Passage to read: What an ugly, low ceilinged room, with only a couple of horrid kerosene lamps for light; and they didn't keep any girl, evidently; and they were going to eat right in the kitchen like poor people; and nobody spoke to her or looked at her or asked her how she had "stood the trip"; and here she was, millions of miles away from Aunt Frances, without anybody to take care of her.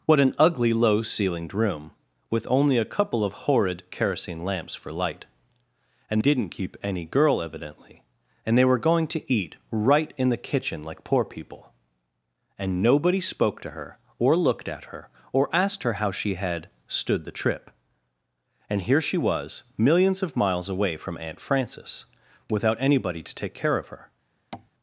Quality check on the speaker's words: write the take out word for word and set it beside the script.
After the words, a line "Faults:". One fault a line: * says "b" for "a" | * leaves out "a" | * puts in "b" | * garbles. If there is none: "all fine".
What an ugly, low ceilinged room, with only a couple of horrid kerosene lamps for light; and didn't keep any girl, evidently; and they were going to eat right in the kitchen like poor people; and nobody spoke to her or looked at her or asked her how she had "stood the trip"; and here she was, millions of miles away from Aunt Frances, without anybody to take care of her.
Faults:
* leaves out "they"